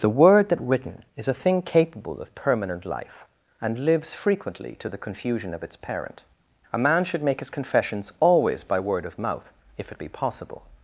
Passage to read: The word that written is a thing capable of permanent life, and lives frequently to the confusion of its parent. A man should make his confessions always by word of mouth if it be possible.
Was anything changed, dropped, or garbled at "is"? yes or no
no